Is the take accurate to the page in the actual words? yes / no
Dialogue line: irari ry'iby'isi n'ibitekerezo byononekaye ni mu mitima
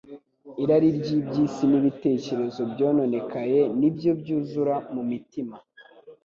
no